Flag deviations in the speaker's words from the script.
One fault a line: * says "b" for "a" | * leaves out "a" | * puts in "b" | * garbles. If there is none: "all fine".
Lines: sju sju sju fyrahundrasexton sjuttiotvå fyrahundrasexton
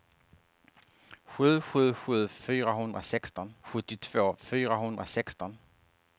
all fine